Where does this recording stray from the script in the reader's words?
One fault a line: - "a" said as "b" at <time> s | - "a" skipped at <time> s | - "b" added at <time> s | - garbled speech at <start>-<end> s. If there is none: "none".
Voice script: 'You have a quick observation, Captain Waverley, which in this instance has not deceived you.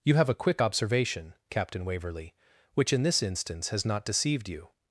none